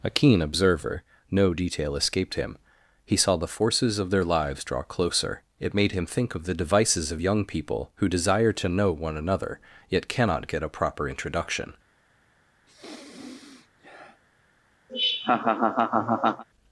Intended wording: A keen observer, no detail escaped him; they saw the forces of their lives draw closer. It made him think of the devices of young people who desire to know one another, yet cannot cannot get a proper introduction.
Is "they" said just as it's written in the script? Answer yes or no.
no